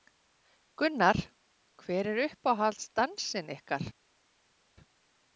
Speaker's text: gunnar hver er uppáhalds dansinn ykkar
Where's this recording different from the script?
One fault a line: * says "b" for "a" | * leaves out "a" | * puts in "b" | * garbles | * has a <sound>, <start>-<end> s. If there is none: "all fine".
all fine